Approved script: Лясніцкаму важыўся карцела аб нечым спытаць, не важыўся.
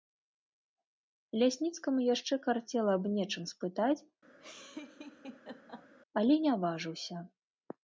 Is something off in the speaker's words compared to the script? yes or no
yes